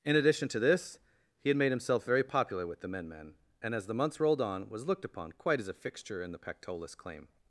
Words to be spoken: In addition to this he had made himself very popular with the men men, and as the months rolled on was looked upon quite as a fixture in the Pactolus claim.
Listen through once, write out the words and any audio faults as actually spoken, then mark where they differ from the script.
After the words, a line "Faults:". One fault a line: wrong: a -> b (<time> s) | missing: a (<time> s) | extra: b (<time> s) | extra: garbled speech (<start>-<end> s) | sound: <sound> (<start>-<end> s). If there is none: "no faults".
In addition to this he had made himself very popular with the men men, and as the months rolled on was looked upon quite as a fixture in the Pactolus claim.
Faults:
no faults